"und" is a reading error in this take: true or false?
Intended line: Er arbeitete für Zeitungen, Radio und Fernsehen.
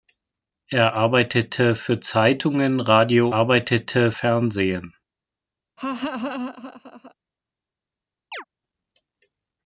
true